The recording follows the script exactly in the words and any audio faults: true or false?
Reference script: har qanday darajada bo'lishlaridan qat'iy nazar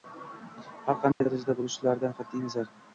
false